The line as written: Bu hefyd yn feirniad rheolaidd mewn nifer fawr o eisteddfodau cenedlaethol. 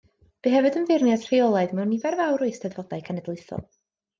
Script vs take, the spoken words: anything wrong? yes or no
no